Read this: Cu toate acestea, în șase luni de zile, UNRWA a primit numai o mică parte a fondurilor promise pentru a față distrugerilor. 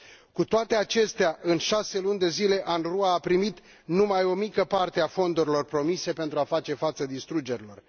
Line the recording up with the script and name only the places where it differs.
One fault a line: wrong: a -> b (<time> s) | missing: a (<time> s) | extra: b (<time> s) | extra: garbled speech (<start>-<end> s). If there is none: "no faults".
extra: face (6.4 s)